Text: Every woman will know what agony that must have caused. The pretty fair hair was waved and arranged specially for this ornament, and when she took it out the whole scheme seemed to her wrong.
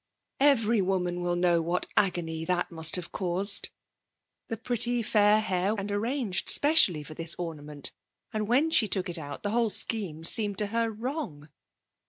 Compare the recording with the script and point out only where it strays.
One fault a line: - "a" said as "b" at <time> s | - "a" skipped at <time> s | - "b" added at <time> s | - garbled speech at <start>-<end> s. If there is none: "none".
- "was waved" skipped at 5.8 s